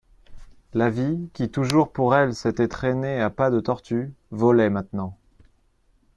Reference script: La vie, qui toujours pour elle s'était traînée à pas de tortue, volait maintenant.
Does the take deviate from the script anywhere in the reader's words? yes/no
no